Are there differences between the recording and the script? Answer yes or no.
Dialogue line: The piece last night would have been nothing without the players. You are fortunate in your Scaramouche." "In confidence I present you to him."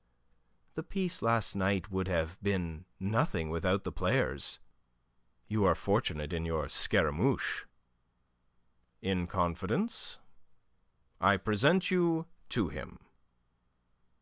no